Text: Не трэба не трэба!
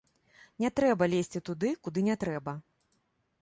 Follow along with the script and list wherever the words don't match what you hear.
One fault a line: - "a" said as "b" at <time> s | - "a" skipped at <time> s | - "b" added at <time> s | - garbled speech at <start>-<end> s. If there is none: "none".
- "лезці туды куды" added at 1.1 s